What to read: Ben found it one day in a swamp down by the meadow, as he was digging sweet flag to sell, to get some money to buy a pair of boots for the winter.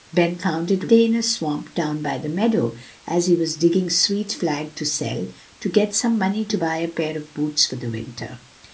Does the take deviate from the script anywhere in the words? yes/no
yes